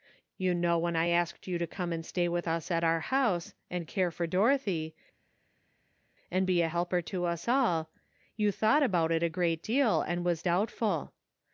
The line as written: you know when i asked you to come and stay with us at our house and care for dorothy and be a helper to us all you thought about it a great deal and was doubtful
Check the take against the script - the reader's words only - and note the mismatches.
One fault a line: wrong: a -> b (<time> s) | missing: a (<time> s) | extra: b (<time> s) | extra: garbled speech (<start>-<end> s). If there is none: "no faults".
no faults